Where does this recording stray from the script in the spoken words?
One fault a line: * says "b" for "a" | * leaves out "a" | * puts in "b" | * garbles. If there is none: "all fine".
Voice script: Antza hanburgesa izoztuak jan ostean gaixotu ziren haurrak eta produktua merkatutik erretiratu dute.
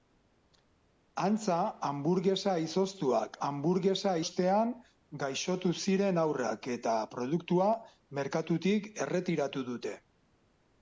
* says "hanburgesa" for "jan"